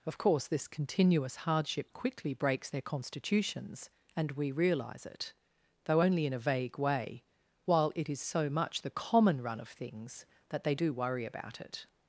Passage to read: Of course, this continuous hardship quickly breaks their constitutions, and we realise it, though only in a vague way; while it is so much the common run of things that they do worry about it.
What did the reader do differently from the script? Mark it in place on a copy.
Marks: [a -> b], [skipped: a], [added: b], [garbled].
Of course, this continuous hardship quickly breaks their constitutions, and we realise it, though only in a vague way; while it is so much the common run of things that they do worry about it.